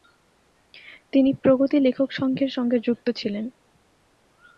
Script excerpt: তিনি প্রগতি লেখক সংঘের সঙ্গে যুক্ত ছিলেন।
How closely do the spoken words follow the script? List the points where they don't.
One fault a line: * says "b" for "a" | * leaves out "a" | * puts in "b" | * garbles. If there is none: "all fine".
all fine